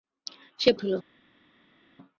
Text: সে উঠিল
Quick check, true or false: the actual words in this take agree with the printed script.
true